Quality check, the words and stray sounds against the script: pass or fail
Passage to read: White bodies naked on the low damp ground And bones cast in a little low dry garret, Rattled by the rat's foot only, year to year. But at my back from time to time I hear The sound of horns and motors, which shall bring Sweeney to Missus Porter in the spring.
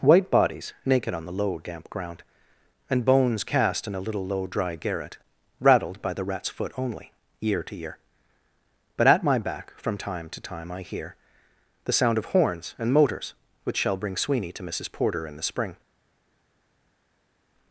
pass